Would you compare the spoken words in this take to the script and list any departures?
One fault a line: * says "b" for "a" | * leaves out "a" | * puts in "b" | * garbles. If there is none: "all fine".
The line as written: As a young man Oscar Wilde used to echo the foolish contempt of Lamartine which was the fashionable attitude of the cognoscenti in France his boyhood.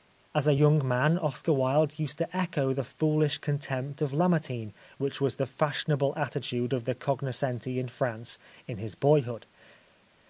* puts in "in"